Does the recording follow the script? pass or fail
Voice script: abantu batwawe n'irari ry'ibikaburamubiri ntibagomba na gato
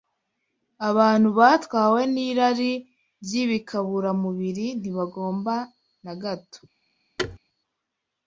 pass